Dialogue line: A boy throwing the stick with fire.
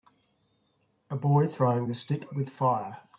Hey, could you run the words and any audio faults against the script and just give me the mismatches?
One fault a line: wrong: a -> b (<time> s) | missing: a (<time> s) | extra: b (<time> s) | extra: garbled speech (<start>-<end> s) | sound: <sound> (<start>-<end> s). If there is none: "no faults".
no faults